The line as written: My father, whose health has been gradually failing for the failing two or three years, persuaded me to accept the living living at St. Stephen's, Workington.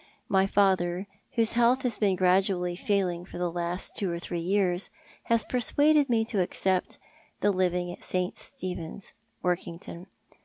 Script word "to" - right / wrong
right